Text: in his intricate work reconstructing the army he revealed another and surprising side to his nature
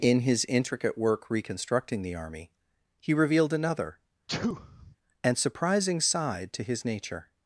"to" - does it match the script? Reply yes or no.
yes